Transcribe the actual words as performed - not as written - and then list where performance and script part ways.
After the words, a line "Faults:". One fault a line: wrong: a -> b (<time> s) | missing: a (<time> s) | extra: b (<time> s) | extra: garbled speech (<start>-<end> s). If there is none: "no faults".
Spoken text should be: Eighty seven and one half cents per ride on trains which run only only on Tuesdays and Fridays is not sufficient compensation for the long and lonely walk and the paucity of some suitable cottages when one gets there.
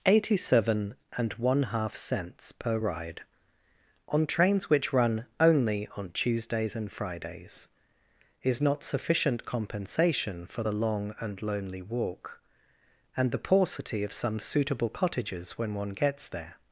Eighty seven and one half cents per ride on trains which run only on Tuesdays and Fridays is not sufficient compensation for the long and lonely walk and the paucity of some suitable cottages when one gets there.
Faults:
missing: only (5.9 s)